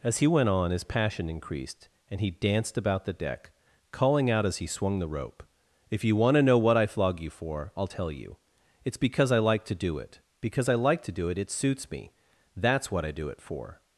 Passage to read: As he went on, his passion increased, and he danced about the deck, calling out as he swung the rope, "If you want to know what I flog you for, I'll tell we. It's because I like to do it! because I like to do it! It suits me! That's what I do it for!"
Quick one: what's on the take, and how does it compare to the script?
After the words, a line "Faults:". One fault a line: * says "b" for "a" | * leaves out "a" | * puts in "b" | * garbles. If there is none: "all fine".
As he went on, his passion increased, and he danced about the deck, calling out as he swung the rope, "If you want to know what I flog you for, I'll tell you. It's because I like to do it! because I like to do it! It suits me! That's what I do it for!"
Faults:
* says "you" for "we"